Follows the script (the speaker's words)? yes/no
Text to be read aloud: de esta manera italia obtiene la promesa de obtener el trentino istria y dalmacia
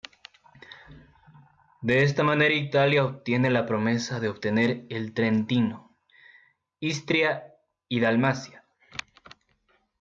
yes